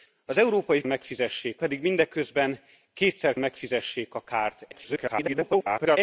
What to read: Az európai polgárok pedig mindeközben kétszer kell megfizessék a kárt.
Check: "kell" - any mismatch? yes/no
yes